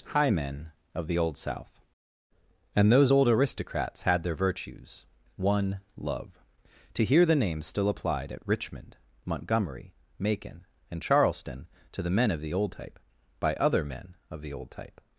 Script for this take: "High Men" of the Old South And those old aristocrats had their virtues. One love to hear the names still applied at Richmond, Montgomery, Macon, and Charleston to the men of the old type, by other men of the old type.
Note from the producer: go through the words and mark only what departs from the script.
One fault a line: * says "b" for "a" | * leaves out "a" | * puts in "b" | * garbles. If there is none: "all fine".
all fine